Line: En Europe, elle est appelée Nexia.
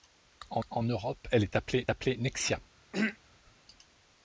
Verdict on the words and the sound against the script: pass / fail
fail